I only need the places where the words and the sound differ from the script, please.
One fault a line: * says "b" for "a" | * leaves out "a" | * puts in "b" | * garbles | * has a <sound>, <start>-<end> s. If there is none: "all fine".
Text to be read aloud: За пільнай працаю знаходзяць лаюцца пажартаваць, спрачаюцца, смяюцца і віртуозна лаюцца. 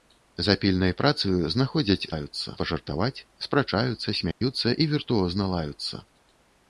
* has a dropout, 4.3-4.4 s